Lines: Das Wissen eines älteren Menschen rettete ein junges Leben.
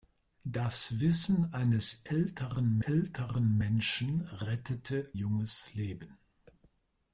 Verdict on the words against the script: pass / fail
fail